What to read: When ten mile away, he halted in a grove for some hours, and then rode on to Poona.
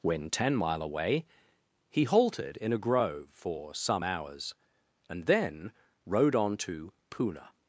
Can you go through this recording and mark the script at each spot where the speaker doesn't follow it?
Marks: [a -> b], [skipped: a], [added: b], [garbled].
When ten mile away, he halted in a grove for some hours, and then rode on to Poona.